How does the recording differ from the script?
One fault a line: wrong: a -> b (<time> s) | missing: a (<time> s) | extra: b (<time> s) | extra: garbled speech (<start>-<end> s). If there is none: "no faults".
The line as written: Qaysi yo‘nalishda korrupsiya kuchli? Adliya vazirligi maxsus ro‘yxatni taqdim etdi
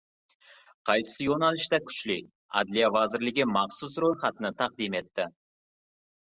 missing: korrupsiya (1.8 s)